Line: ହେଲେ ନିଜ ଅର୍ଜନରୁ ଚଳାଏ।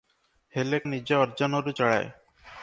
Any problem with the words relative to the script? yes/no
no